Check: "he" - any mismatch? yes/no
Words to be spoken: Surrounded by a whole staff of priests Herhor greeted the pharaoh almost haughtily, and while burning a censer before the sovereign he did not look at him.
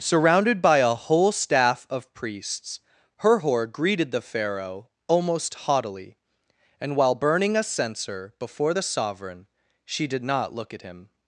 yes